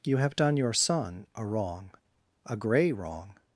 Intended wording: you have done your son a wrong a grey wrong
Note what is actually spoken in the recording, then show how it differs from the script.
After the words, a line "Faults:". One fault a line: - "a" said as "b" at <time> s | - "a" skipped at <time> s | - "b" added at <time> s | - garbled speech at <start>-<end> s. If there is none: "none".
you have done your son a wrong a grey wrong
Faults:
none